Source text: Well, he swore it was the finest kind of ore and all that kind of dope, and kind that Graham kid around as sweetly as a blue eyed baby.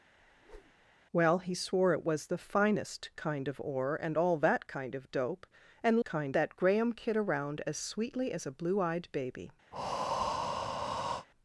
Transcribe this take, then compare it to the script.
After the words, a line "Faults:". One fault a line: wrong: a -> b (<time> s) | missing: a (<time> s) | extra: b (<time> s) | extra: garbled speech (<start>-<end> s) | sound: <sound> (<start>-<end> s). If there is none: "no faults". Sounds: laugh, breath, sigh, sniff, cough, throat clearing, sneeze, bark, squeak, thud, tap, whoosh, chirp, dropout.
Well, he swore it was the finest kind of ore and all that kind of dope, and kind that Graham kid around as sweetly as a blue eyed baby.
Faults:
sound: whoosh (0.2-0.9 s)
sound: breath (9.7-11.3 s)